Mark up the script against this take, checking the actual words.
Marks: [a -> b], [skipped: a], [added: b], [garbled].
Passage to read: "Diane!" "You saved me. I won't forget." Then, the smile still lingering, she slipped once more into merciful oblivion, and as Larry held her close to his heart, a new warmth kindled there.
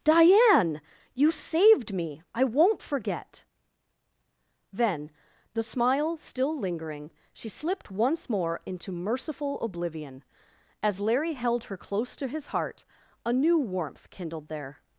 "Diane!" "You saved me. I won't forget." Then, the smile still lingering, she slipped once more into merciful oblivion, [skipped: and] as Larry held her close to his heart, a new warmth kindled there.